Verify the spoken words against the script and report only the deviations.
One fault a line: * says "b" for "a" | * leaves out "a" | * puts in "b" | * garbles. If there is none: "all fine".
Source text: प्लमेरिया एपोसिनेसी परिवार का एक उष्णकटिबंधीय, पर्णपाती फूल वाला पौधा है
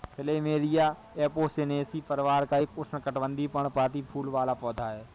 all fine